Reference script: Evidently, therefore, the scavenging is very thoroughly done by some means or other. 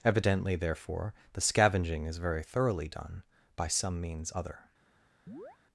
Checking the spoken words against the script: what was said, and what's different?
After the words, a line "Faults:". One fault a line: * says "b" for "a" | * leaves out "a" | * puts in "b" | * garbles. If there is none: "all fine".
Evidently, therefore, the scavenging is very thoroughly done by some means other.
Faults:
* leaves out "or"